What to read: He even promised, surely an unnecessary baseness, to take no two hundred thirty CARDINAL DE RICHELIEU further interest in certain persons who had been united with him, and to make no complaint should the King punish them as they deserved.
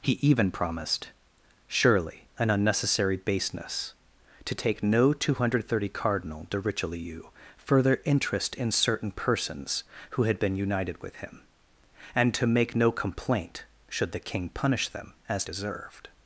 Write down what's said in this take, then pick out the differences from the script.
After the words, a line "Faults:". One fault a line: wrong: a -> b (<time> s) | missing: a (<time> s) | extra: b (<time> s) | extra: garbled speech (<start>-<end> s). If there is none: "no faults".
He even promised, surely an unnecessary baseness, to take no two hundred thirty CARDINAL DE RICHELIEU further interest in certain persons who had been united with him, and to make no complaint should the King punish them as deserved.
Faults:
missing: they (15.4 s)